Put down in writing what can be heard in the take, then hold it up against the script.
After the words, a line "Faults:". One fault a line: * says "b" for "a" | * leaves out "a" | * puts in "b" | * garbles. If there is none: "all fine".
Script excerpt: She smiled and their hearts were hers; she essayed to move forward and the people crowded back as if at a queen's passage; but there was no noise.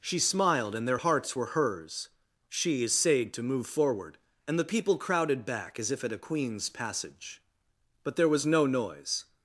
She smiled and their hearts were hers; she essayed to move forward and the people crowded back as if at a queen's passage; but there was no noise.
Faults:
all fine